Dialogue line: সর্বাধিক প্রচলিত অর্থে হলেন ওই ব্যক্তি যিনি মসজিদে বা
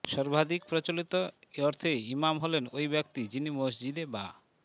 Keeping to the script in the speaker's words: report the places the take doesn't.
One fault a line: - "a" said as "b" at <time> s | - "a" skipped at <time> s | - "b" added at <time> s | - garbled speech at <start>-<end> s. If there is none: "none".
- "ইমাম" added at 2.1 s